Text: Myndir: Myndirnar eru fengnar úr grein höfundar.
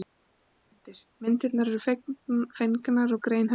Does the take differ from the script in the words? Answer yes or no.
no